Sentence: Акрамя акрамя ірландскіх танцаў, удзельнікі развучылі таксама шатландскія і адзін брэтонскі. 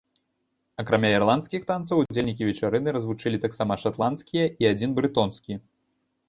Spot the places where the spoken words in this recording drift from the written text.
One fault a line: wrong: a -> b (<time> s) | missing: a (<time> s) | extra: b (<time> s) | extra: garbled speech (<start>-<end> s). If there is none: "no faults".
missing: акрамя (1.1 s)
extra: вечарыны (2.5 s)